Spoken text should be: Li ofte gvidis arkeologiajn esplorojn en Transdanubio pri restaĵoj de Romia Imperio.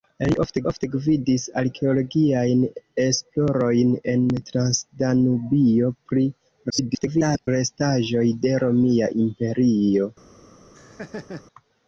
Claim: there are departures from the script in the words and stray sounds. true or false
true